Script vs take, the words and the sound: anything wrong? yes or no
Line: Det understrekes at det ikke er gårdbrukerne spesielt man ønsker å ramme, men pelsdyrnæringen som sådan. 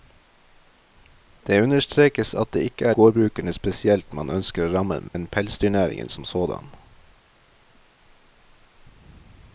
yes